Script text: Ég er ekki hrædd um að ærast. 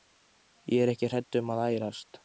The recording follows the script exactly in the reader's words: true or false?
true